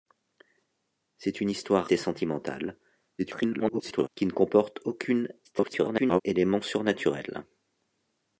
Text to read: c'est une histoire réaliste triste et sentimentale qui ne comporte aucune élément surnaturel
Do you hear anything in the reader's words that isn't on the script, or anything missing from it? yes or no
yes